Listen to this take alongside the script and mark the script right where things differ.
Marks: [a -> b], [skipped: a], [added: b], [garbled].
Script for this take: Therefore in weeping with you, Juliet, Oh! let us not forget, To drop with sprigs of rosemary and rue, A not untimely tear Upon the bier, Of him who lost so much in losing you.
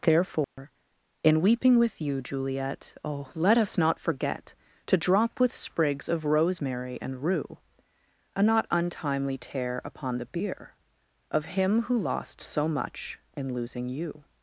Therefore in weeping with you, Juliet, Oh! let us not forget, To drop with sprigs of rosemary and rue, A not untimely tear Upon the bier, Of him who lost so much in losing you.